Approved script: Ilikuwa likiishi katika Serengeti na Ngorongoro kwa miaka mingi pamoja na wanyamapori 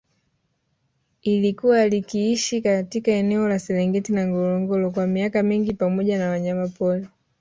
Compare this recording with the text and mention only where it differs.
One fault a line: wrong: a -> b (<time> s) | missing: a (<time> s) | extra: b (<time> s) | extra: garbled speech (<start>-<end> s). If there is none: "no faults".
extra: eneo la (3.1 s)